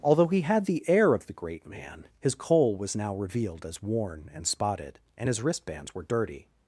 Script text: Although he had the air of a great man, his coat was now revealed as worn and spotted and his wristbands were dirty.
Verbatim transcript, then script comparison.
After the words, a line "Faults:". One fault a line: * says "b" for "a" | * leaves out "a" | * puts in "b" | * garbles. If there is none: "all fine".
Although he had the air of the great man, his coal was now revealed as worn and spotted and his wristbands were dirty.
Faults:
* says "the" for "a"
* says "coal" for "coat"